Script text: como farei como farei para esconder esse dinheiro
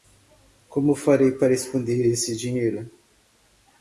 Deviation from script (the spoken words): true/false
true